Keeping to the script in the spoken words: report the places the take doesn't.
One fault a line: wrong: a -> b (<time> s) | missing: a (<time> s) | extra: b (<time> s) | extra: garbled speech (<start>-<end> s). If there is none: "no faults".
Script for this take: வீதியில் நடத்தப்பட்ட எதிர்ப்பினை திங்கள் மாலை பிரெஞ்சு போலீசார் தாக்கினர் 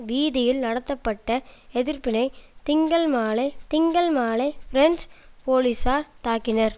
extra: திங்கள் மாலை (3.7 s)